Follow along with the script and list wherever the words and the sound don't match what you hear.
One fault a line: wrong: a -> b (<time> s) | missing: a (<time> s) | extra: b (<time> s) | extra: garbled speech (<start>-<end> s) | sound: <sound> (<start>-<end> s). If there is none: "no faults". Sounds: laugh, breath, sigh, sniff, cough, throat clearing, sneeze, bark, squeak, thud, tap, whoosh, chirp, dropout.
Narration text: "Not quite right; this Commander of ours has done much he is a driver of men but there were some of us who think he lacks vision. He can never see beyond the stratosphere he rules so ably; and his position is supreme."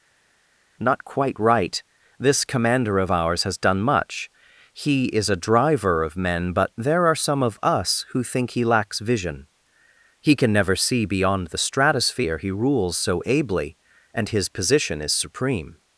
wrong: were -> are (7.0 s)